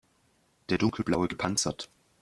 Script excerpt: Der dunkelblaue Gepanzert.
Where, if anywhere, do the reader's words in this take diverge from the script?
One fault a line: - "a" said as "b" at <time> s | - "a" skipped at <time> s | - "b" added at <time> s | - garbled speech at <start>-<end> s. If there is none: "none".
none